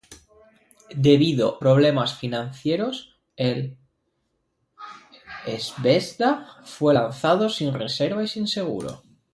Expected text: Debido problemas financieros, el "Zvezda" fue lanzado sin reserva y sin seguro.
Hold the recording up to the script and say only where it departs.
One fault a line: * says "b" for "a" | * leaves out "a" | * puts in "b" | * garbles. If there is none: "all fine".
all fine